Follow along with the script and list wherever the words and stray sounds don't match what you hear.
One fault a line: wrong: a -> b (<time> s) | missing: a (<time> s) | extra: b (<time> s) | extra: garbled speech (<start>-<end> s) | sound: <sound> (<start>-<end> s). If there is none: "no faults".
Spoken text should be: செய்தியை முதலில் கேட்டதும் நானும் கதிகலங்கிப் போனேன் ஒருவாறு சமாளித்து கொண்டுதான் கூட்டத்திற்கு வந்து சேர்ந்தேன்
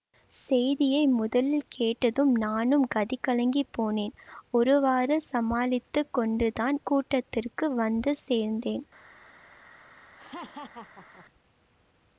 sound: laugh (10.2-11.3 s)